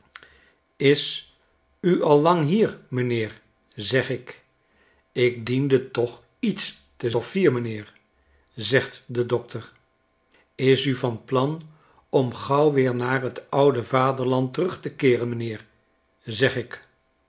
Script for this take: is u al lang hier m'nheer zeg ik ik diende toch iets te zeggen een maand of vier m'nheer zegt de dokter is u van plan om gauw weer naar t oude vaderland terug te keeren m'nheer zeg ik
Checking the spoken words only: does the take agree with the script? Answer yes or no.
no